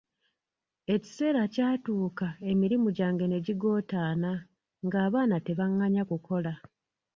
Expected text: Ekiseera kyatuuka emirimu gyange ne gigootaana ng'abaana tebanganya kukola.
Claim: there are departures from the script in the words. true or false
false